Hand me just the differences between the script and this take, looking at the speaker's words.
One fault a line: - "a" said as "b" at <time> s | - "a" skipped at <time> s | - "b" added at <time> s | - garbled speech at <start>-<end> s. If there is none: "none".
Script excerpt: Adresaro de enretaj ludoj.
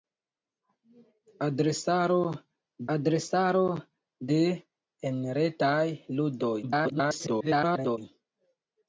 - "adresaro" added at 2.9 s
- garbled speech at 6.6-8.0 s